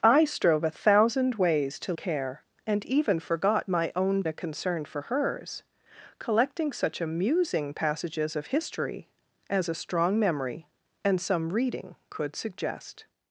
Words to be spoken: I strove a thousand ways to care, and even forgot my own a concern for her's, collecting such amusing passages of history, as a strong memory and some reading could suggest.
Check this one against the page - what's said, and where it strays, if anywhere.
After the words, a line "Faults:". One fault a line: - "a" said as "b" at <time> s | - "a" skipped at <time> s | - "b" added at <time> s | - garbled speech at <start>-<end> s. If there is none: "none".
I strove a thousand ways to care, and even forgot my own a concern for her's, collecting such amusing passages of history, as a strong memory and some reading could suggest.
Faults:
none